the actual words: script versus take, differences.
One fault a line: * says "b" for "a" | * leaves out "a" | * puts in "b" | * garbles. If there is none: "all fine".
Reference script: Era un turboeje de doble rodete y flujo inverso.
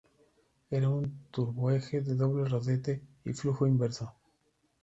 all fine